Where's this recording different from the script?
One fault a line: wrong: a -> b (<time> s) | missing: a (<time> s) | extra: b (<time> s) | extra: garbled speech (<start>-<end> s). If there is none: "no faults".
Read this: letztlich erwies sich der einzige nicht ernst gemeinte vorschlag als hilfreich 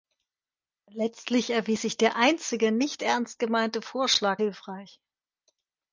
missing: als (4.4 s)